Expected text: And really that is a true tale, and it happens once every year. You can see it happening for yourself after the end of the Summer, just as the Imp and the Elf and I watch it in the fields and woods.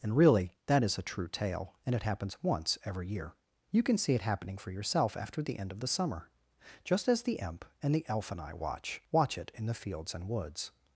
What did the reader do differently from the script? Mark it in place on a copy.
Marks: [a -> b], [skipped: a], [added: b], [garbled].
And really that is a true tale, and it happens once every year. You can see it happening for yourself after the end of the Summer, just as the Imp and the Elf and I watch [added: watch] it in the fields and woods.